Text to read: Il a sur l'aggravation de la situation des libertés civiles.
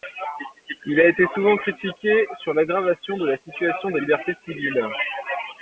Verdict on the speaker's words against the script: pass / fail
fail